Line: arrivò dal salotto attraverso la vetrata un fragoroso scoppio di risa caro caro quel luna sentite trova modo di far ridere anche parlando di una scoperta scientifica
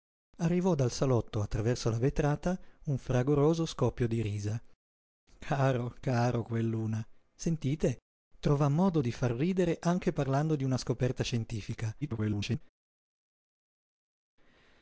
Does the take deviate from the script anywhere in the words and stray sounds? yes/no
yes